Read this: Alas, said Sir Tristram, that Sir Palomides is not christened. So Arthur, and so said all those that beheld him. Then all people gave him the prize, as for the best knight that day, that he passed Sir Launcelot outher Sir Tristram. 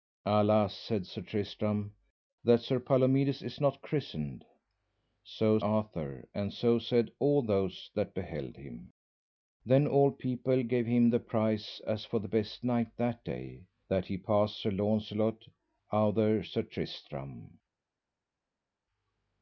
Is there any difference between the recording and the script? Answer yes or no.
no